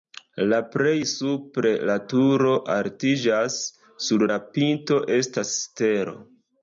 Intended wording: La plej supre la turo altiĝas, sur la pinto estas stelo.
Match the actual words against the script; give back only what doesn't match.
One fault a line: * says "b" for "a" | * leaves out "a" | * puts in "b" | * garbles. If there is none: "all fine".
all fine